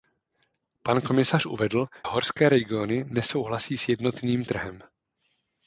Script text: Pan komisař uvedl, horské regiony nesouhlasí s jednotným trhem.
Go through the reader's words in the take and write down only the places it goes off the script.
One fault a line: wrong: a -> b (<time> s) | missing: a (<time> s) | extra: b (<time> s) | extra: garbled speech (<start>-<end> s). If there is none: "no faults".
no faults